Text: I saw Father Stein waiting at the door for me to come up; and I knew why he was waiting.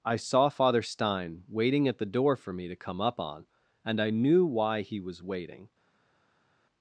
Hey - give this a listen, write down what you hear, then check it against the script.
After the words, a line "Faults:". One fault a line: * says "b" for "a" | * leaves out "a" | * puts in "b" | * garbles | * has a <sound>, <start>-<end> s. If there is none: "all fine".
I saw Father Stein waiting at the door for me to come up; on and I knew why he was waiting.
Faults:
* puts in "on"